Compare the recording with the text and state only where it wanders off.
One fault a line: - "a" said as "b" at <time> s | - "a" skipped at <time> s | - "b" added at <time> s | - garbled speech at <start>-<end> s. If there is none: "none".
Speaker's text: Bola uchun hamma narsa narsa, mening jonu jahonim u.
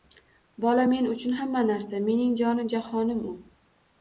- "men" added at 0.9 s
- "narsa" skipped at 2.0 s